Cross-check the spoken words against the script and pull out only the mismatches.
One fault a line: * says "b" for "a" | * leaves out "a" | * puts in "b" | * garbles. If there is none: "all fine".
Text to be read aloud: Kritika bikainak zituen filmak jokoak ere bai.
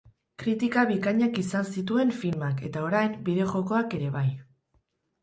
* puts in "izan"
* puts in "eta orain bideo"